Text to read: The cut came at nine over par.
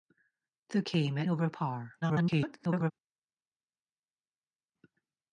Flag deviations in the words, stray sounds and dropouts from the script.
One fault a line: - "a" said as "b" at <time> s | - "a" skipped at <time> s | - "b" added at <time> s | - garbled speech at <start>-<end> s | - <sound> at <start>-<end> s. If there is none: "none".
- "cut" skipped at 0.8 s
- "nine" skipped at 1.3 s
- garbled speech at 2.0-2.9 s